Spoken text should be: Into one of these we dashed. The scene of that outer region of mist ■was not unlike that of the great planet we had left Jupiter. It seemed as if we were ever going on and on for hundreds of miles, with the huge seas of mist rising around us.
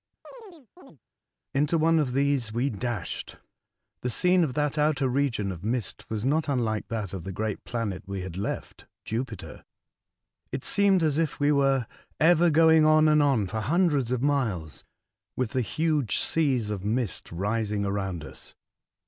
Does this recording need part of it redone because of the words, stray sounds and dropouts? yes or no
yes